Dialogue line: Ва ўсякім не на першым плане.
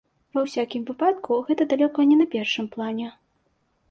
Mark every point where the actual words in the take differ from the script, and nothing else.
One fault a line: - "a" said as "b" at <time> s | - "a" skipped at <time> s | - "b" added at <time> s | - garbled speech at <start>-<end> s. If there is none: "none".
- "выпадку гэта далёка" added at 0.9 s